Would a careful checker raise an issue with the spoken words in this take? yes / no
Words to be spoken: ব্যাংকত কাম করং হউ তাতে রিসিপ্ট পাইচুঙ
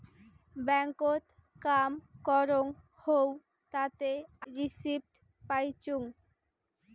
no